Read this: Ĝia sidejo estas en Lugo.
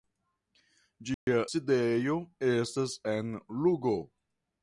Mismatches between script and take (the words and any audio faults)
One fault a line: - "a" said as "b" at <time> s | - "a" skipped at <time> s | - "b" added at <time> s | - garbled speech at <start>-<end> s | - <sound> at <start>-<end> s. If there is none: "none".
- dropout at 1.1-1.3 s